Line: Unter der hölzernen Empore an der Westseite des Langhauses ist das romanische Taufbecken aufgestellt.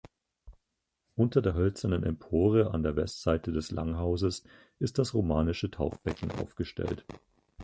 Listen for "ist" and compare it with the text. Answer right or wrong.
right